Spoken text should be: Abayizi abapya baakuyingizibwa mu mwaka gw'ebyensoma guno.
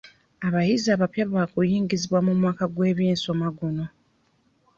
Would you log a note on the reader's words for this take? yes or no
no